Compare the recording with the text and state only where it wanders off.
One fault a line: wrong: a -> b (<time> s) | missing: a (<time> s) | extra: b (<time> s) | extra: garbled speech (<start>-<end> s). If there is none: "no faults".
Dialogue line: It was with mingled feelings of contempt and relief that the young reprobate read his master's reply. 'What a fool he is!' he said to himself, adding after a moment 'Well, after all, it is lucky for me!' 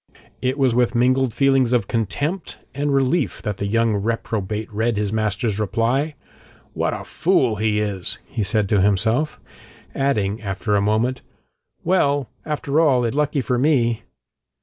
missing: is (13.1 s)